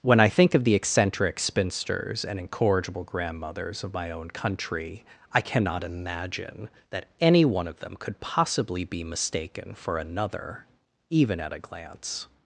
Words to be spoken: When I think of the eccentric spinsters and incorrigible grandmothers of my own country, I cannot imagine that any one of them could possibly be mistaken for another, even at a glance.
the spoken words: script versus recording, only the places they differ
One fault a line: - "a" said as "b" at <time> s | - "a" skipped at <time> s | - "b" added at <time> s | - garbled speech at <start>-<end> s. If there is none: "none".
none